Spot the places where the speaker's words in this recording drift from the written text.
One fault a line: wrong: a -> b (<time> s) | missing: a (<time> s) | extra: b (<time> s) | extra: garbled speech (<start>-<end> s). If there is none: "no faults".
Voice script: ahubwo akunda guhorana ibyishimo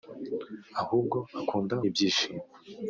missing: guhorana (1.8 s)